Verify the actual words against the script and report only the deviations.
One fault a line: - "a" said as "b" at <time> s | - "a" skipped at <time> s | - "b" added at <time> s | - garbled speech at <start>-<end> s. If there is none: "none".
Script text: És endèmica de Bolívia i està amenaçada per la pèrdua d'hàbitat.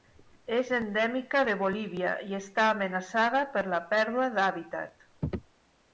none